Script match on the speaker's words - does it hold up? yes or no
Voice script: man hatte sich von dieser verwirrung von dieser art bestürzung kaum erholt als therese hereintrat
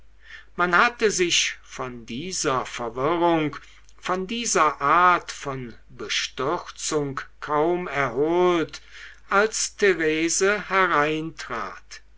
no